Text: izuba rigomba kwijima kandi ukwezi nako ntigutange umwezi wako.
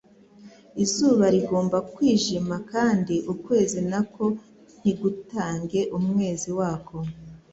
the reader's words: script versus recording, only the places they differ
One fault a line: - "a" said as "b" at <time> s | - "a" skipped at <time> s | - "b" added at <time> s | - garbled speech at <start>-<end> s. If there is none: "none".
none